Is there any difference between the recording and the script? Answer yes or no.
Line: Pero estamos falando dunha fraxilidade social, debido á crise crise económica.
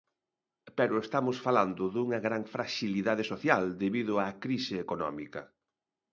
yes